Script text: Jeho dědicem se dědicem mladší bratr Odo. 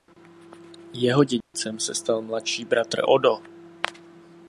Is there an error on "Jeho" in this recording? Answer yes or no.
no